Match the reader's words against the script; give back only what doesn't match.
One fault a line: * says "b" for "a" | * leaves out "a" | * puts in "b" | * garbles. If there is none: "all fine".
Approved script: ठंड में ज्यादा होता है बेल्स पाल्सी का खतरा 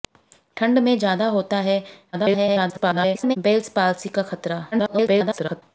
* garbles
* garbles